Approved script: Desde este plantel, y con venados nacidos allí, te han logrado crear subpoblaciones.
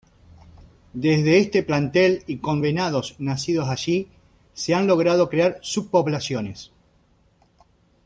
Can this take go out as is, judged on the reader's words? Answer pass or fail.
fail